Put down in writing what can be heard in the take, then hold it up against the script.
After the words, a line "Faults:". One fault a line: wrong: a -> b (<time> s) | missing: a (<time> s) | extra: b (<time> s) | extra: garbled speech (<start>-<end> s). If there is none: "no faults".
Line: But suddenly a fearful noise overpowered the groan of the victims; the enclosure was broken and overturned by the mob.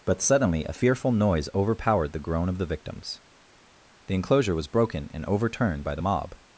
But suddenly a fearful noise overpowered the groan of the victims; the enclosure was broken and overturned by the mob.
Faults:
no faults